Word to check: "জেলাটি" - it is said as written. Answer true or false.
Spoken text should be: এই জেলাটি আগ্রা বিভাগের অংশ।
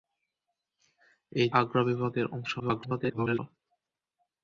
false